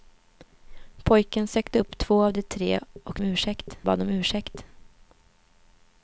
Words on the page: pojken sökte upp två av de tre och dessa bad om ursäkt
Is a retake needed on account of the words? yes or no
yes